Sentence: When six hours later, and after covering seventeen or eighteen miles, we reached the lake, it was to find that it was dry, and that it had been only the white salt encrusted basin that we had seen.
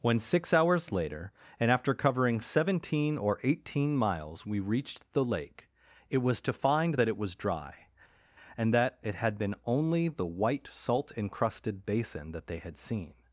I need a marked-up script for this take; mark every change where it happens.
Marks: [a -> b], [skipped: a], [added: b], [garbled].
When six hours later, and after covering seventeen or eighteen miles, we reached the lake, it was to find that it was dry, and that it had been only the white salt encrusted basin that [we -> they] had seen.